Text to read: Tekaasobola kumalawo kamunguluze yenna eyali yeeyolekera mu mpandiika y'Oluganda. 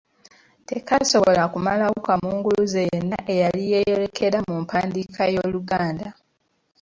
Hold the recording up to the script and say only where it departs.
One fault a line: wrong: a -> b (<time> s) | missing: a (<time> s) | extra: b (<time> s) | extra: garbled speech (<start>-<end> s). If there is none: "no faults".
no faults